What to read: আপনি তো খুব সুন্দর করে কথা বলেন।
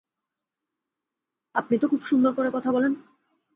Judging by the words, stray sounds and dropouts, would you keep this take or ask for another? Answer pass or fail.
pass